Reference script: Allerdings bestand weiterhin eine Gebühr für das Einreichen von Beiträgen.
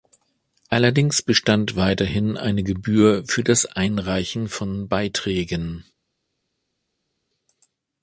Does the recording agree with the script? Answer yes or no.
yes